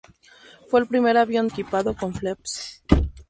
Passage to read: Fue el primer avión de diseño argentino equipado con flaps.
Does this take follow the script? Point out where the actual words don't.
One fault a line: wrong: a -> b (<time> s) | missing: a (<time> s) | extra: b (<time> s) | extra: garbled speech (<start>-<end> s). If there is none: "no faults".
missing: de diseño argentino (1.5 s)